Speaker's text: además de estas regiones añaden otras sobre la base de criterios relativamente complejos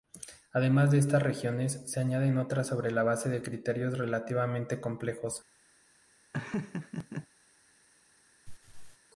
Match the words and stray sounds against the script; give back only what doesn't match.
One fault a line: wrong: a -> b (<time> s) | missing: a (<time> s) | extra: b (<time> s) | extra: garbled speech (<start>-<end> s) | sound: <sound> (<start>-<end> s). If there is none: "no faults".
extra: se (1.9 s)
sound: laugh (6.3-7.3 s)
sound: laugh (8.5-9.0 s)